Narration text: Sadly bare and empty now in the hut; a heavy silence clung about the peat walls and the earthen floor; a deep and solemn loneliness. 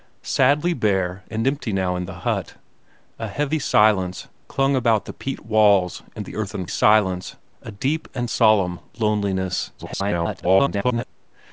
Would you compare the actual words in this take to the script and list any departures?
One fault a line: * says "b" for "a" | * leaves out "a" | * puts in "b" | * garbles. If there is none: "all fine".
* says "silence" for "floor"
* garbles